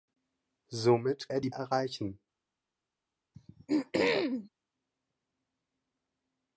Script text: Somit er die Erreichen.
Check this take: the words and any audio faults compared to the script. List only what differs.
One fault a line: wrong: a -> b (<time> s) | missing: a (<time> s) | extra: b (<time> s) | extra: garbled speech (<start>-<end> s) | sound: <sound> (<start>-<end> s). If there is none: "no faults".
sound: throat clearing (3.3-4.5 s)